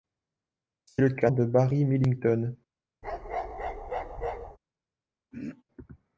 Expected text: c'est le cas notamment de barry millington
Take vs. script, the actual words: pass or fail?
fail